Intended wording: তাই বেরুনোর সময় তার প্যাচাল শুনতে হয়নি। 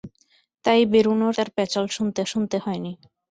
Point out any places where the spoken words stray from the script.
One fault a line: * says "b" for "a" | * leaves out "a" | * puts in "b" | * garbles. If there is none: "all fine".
* leaves out "সময়"
* puts in "শুনতে"